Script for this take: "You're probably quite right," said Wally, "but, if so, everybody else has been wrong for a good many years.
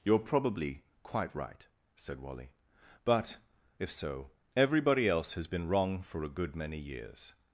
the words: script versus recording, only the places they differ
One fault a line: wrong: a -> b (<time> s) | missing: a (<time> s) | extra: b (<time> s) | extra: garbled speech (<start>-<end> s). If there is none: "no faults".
no faults